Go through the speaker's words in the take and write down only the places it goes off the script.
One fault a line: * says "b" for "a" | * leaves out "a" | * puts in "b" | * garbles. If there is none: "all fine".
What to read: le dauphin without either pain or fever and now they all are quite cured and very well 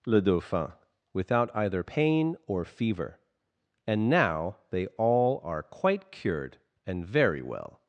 all fine